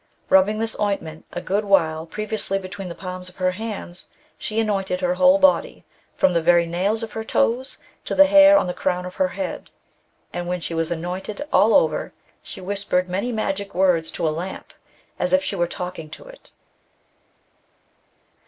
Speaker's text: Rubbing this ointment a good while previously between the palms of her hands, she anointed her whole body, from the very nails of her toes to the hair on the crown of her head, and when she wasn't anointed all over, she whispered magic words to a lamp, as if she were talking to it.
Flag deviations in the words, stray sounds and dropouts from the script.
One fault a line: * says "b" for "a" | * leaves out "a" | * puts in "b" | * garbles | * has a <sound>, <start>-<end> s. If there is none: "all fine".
* says "was" for "wasn't"
* puts in "many"